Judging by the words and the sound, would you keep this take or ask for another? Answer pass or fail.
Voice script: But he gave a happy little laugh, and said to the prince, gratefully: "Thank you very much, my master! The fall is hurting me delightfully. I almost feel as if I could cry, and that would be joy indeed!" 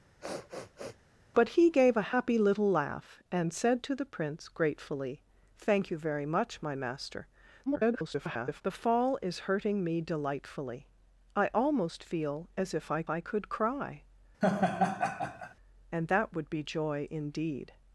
fail